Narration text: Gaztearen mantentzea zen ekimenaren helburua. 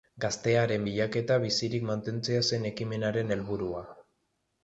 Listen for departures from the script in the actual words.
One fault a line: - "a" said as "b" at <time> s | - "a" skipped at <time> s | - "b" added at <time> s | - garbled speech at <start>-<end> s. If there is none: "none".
- "bilaketa bizirik" added at 0.8 s